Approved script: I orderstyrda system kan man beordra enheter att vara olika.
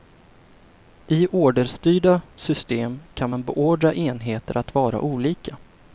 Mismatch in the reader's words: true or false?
false